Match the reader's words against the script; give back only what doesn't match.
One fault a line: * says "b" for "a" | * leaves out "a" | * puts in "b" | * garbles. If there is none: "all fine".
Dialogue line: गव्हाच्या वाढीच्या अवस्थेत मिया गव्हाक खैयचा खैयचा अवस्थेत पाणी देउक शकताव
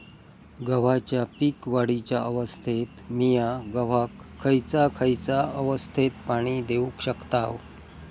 * puts in "पीक"